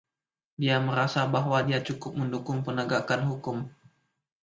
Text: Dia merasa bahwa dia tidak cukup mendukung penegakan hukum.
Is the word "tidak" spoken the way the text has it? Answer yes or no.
no